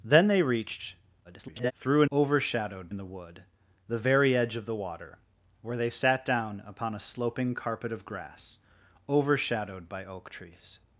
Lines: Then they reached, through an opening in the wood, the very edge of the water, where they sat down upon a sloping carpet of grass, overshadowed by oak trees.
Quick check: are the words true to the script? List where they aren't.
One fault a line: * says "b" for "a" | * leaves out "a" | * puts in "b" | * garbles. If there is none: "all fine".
* garbles
* says "overshadowed" for "opening"